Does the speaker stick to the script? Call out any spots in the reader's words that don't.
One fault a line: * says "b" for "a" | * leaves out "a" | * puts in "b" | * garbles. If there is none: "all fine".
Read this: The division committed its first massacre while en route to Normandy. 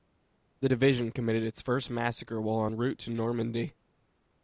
all fine